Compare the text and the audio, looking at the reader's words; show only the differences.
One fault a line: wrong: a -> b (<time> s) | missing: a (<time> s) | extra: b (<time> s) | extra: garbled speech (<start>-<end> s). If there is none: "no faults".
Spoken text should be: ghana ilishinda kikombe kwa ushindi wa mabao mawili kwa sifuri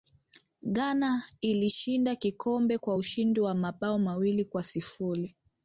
no faults